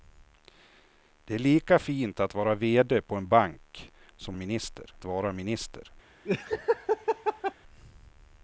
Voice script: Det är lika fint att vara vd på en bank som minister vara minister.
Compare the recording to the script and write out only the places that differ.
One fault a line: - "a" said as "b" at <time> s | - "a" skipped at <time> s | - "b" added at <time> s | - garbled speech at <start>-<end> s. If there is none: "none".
none